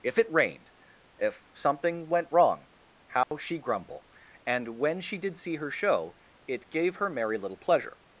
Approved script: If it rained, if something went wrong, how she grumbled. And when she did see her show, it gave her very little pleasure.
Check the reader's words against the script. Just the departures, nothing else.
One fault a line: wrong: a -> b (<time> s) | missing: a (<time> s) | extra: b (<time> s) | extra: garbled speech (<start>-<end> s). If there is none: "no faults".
wrong: grumbled -> grumble (3.6 s)
wrong: very -> merry (7.1 s)